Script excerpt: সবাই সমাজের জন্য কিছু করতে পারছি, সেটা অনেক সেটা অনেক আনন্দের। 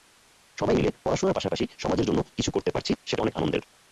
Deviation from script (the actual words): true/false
true